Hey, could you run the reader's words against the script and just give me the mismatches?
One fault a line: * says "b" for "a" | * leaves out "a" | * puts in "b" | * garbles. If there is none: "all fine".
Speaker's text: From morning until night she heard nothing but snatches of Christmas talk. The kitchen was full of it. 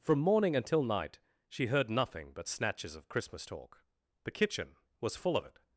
all fine